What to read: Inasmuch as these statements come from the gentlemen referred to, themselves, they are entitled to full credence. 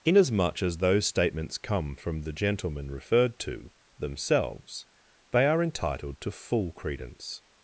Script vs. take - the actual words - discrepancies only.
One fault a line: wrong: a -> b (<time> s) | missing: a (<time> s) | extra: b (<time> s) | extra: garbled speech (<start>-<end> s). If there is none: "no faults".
wrong: these -> those (0.8 s)